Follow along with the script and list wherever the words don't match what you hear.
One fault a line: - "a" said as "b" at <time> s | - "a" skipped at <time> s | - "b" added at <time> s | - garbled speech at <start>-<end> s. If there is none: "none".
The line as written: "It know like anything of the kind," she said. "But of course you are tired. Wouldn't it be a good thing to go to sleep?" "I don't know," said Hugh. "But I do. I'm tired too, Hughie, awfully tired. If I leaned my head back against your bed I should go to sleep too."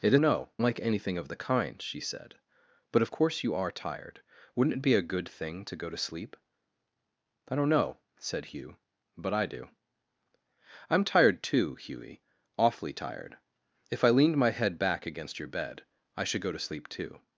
none